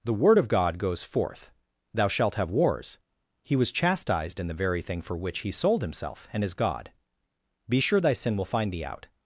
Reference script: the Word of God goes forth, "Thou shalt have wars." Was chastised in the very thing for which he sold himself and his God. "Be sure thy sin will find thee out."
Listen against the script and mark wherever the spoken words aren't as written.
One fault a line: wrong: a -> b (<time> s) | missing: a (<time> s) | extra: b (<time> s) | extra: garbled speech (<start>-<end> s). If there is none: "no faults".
extra: He (3.4 s)